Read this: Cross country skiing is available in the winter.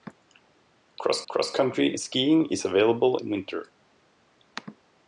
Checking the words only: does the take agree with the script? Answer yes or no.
no